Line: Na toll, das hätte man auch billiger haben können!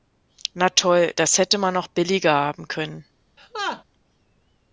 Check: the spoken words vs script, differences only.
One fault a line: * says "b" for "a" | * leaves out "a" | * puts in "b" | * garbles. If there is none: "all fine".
all fine